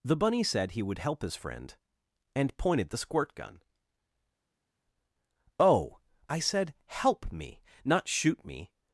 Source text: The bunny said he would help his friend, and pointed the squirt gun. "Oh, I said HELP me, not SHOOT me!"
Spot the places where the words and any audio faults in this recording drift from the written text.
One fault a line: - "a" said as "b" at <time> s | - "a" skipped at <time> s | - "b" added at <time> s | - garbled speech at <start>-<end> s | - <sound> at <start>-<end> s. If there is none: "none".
none